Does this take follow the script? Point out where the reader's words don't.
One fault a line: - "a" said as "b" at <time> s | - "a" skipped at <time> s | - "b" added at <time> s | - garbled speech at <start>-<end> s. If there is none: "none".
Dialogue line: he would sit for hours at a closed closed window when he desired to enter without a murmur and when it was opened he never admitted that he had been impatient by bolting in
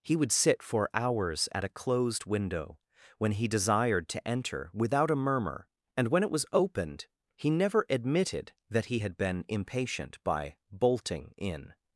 - "closed" skipped at 2.2 s